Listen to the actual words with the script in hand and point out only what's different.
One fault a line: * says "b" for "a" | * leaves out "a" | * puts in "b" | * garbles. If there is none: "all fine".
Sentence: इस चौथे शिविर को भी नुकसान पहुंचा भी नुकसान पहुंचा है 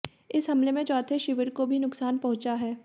* puts in "हमले में"
* leaves out "भी नुकसान पहुंचा"